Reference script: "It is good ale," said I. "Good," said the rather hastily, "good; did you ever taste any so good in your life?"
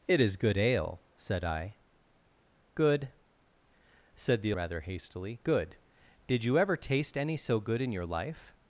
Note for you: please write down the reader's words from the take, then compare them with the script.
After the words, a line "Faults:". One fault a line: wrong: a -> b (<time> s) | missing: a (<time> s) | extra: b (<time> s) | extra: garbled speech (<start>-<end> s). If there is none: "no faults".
"It is good ale," said I. "Good," said the rather hastily, "good; did you ever taste any so good in your life?"
Faults:
no faults